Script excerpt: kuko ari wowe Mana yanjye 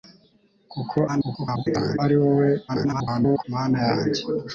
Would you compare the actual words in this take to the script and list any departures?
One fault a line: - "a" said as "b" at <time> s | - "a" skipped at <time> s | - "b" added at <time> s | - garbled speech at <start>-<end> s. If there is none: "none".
- garbled speech at 1.1-2.0 s
- garbled speech at 2.7-3.4 s